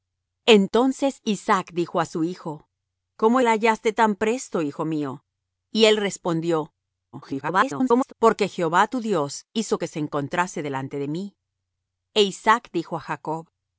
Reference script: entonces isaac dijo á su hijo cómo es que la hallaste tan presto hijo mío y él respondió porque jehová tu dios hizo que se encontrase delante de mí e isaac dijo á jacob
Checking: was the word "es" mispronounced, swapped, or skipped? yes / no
yes